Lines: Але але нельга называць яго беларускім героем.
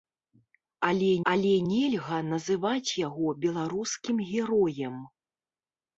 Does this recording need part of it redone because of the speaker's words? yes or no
no